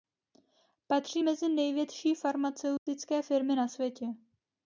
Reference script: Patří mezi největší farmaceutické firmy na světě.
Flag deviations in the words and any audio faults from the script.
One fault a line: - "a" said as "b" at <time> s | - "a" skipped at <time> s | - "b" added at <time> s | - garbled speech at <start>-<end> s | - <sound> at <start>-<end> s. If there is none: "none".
- dropout at 2.8-2.9 s